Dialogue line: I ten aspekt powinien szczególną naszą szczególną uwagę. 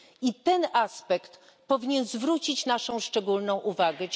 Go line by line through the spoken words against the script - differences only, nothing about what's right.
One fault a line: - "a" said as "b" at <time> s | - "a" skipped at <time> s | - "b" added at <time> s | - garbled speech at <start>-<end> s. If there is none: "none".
- "szczególną" said as "zwrócić" at 2.0 s